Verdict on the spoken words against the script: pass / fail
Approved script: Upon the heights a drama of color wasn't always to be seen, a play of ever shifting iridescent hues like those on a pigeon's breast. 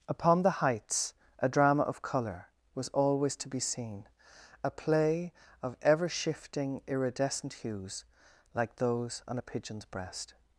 fail